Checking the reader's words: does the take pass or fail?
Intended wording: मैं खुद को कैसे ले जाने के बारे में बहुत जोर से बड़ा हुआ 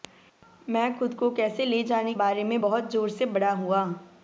fail